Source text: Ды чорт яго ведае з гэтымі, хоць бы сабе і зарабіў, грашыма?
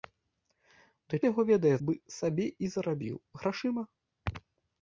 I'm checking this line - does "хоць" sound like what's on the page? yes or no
no